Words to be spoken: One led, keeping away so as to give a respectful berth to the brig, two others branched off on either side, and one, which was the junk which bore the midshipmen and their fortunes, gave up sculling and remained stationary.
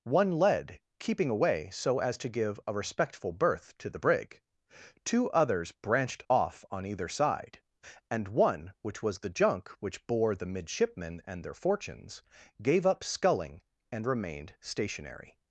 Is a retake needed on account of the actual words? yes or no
no